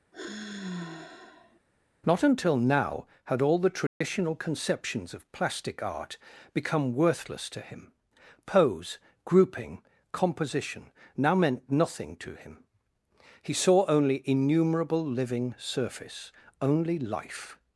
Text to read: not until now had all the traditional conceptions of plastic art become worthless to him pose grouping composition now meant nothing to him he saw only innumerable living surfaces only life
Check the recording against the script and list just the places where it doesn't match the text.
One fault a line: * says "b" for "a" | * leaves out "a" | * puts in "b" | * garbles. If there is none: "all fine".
* says "surface" for "surfaces"